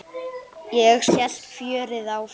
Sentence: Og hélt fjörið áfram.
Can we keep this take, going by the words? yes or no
yes